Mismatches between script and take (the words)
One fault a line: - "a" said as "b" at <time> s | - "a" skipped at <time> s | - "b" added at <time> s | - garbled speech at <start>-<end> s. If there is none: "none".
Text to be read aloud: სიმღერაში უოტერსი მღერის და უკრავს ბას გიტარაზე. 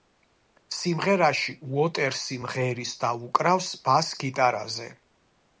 none